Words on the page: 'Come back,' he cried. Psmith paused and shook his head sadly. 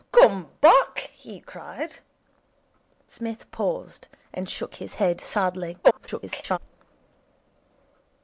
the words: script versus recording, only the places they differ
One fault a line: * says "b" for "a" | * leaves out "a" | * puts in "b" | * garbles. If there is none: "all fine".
* garbles